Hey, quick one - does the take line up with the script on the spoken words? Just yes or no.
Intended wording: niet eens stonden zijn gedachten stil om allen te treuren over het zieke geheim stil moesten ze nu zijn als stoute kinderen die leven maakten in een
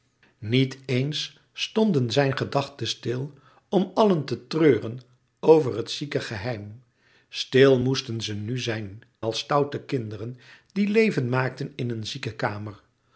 yes